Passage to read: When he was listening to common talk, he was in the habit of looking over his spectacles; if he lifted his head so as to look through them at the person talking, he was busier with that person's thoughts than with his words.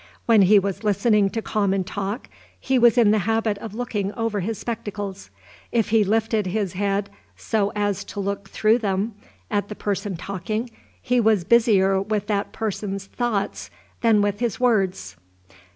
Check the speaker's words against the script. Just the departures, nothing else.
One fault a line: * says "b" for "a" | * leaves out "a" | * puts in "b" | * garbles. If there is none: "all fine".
all fine